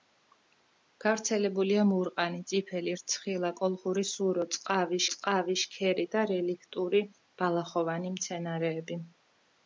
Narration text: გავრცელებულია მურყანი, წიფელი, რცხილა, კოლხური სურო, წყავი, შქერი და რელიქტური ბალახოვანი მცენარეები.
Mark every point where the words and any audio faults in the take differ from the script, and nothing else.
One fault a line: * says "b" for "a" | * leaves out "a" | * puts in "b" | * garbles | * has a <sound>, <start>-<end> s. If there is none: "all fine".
* puts in "წყავი"